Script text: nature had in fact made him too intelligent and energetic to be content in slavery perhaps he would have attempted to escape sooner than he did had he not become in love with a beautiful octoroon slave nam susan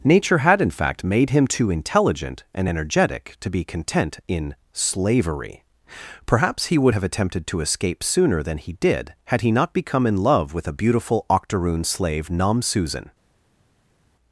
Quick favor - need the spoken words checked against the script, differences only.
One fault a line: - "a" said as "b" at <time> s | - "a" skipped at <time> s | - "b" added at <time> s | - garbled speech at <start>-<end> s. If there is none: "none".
none